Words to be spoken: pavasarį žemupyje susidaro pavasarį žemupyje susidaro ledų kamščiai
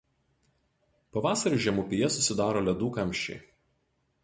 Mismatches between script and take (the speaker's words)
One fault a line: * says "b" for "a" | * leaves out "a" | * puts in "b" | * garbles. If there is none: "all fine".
* leaves out "pavasarį žemupyje susidaro"